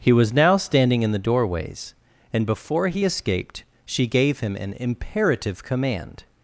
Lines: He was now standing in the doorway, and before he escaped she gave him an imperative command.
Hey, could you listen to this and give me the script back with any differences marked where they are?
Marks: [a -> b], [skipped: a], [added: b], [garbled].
He was now standing in the [doorway, -> doorways] and before he escaped she gave him an imperative command.